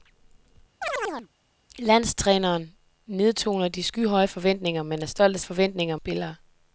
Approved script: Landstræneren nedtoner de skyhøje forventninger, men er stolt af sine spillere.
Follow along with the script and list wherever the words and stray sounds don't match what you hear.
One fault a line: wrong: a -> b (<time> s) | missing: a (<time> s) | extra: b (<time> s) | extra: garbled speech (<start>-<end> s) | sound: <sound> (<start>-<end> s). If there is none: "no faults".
sound: chirp (0.8-1.3 s)
wrong: sine -> forventninger (5.4 s)